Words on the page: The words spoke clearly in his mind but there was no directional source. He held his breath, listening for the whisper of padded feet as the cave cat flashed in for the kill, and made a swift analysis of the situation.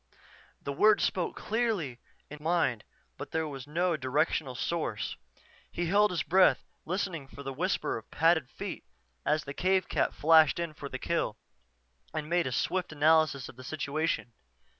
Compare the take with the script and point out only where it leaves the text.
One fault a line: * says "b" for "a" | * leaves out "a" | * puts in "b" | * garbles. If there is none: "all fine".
* leaves out "his"